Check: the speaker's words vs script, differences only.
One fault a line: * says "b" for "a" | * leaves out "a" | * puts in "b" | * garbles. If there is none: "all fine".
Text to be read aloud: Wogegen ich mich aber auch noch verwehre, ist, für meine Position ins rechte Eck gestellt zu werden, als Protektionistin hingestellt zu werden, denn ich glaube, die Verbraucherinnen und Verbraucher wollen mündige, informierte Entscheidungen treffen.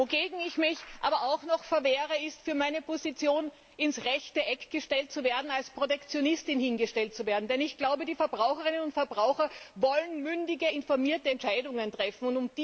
all fine